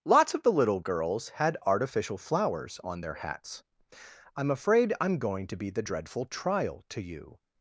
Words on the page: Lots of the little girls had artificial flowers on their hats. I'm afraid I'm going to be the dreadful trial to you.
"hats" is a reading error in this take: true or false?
false